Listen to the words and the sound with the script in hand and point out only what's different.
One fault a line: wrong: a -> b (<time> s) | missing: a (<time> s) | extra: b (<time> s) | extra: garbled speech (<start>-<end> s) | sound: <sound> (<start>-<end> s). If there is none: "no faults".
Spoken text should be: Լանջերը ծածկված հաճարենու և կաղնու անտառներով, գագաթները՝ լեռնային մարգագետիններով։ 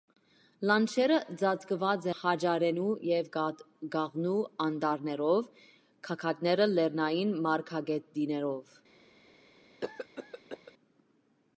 sound: cough (9.8-10.7 s)